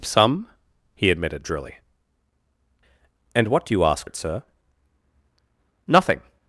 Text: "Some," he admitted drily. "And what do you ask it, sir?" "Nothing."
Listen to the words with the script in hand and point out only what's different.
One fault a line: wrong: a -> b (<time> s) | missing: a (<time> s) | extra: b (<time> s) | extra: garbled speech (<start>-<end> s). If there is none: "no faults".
no faults